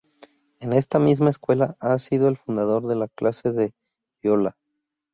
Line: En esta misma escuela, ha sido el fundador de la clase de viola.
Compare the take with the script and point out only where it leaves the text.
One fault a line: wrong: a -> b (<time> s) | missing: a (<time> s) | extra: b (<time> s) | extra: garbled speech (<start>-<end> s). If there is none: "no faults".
no faults